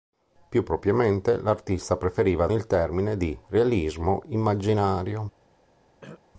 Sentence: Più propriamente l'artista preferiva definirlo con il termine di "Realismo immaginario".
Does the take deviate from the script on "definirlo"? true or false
true